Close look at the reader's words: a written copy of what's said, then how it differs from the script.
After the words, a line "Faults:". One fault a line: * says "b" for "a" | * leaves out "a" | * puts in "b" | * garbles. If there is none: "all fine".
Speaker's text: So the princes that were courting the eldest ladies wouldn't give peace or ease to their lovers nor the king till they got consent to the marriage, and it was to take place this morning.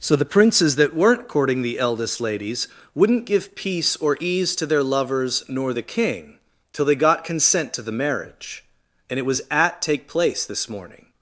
So the princes that weren't courting the eldest ladies wouldn't give peace or ease to their lovers nor the king till they got consent to the marriage, and it was at take place this morning.
Faults:
* says "weren't" for "were"
* says "at" for "to"